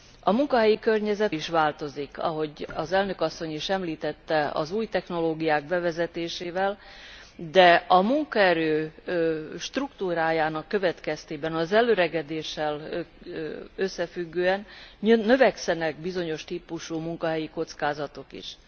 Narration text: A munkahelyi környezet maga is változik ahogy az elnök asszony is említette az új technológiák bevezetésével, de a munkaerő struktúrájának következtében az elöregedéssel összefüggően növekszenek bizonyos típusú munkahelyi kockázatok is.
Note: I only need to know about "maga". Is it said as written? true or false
false